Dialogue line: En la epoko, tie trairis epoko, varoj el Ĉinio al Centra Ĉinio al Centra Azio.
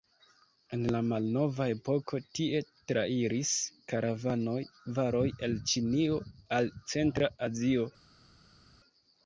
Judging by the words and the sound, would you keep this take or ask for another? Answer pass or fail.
fail